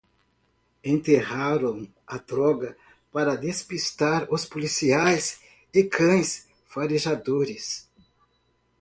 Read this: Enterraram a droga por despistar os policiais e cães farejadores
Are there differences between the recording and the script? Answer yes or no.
yes